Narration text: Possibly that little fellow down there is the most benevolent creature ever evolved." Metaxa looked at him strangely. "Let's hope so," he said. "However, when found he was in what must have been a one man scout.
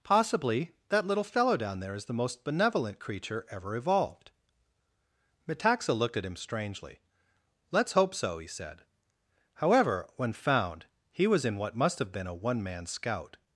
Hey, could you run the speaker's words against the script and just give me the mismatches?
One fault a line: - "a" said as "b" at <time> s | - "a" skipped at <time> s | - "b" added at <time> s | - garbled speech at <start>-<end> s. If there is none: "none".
none